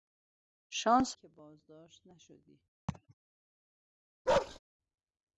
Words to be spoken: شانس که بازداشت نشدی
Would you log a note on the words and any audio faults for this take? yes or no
yes